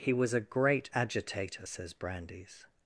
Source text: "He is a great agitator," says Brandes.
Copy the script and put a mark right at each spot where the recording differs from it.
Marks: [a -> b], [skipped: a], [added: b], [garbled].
"He [is -> was] a great agitator," says Brandes.